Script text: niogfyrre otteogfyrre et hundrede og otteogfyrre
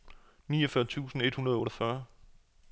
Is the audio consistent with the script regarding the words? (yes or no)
no